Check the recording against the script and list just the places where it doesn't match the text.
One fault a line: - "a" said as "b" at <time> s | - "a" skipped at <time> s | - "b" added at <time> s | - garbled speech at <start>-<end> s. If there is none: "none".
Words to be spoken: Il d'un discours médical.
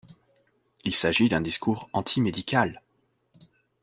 - "s'agit" added at 0.9 s
- "anti" added at 1.9 s